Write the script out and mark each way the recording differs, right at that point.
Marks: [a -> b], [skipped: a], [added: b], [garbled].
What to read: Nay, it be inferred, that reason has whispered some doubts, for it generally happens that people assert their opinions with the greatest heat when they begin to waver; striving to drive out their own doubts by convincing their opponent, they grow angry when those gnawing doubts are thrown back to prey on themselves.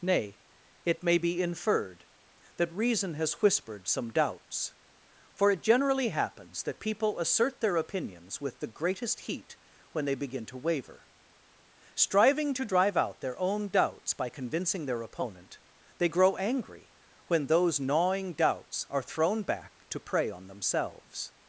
Nay, it [added: may] be inferred, that reason has whispered some doubts, for it generally happens that people assert their opinions with the greatest heat when they begin to waver; striving to drive out their own doubts by convincing their opponent, they grow angry when those gnawing doubts are thrown back to prey on themselves.